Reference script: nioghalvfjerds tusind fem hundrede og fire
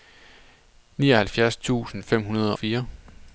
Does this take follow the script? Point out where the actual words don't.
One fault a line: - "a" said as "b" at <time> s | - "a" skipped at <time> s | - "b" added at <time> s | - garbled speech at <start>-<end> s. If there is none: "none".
- "og" skipped at 2.5 s